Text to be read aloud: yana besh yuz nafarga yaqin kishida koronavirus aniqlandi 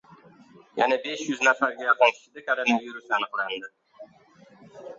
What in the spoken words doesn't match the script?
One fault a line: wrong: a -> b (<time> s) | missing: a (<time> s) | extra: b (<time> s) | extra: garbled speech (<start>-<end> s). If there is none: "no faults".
no faults